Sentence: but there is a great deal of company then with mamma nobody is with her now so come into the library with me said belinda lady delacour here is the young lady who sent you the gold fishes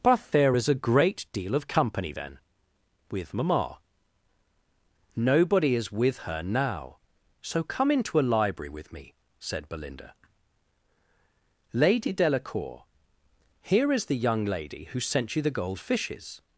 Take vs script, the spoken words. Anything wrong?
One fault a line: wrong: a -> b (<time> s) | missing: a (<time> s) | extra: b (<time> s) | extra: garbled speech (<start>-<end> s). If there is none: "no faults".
wrong: the -> a (8.2 s)